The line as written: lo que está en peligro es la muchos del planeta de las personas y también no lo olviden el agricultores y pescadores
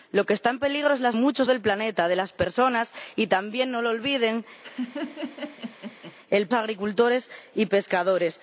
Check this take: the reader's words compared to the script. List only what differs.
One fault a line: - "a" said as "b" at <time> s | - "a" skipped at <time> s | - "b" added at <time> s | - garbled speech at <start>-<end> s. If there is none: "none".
none